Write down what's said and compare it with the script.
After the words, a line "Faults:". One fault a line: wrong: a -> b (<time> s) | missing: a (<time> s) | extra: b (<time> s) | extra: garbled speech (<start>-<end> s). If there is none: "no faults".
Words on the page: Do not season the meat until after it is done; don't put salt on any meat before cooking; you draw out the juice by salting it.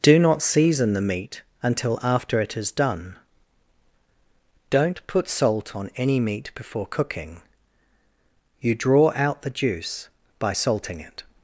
Do not season the meat until after it is done; don't put salt on any meat before cooking; you draw out the juice by salting it.
Faults:
no faults